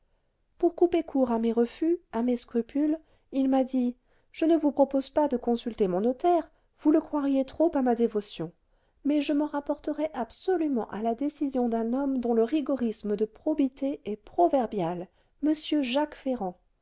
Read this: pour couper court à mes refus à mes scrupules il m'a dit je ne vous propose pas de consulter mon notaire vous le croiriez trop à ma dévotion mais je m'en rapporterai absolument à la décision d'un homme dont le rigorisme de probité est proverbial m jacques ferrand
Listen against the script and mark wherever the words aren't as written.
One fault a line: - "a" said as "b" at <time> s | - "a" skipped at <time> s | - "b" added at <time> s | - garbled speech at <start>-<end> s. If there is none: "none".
none